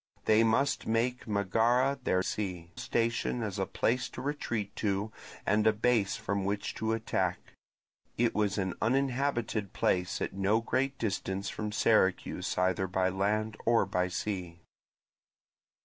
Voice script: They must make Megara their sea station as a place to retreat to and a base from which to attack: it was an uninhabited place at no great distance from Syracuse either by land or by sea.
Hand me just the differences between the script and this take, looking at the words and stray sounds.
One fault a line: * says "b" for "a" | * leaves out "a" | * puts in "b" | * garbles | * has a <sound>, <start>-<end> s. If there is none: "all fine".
all fine